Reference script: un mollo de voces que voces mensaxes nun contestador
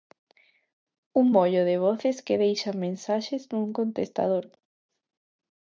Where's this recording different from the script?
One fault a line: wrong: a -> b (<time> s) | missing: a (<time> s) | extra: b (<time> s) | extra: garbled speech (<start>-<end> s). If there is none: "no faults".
wrong: voces -> deixan (2.4 s)